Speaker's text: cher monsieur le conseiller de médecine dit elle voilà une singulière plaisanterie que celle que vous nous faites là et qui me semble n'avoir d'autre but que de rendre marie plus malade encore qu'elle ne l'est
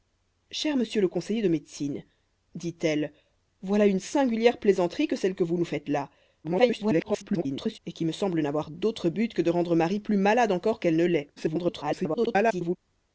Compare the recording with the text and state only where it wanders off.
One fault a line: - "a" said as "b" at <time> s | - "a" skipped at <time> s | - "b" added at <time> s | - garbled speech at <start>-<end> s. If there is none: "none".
- garbled speech at 6.4-7.8 s
- garbled speech at 11.4-12.8 s